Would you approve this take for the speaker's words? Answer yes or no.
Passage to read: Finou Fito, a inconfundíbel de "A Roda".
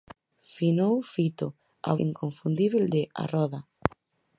yes